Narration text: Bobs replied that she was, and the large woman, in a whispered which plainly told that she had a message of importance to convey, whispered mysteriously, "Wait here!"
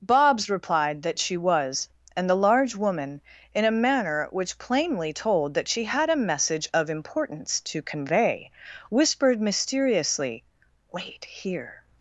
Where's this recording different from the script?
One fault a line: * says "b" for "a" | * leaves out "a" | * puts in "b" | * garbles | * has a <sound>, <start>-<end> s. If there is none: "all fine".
* says "manner" for "whispered"